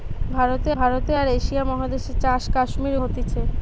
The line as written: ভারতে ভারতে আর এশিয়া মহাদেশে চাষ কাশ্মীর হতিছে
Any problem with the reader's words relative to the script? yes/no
no